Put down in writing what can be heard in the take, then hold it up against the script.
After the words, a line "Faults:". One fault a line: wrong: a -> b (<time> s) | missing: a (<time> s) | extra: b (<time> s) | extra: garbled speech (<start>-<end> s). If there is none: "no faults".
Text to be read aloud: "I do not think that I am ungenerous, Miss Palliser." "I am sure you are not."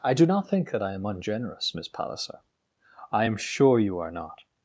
"I do not think that I am ungenerous, Miss Palliser." "I am sure you are not."
Faults:
no faults